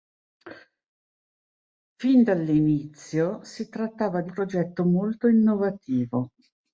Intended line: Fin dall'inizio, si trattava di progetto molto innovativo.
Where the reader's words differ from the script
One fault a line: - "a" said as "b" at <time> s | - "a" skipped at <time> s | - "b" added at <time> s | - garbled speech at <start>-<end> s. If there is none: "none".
none